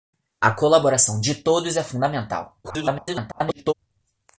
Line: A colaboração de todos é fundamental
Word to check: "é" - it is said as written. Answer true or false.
true